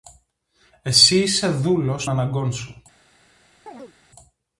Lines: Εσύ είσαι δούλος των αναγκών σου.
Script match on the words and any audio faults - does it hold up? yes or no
no